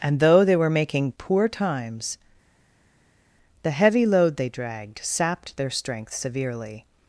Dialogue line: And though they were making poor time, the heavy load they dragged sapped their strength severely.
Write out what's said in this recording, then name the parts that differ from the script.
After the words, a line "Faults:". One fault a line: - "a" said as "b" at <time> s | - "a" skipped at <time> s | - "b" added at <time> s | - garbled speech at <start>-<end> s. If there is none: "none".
And though they were making poor times, the heavy load they dragged sapped their strength severely.
Faults:
- "time" said as "times" at 1.5 s